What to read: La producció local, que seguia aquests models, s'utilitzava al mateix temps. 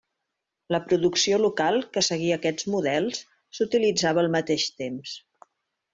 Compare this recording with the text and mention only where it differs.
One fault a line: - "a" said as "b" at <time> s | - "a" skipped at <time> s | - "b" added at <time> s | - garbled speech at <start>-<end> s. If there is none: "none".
none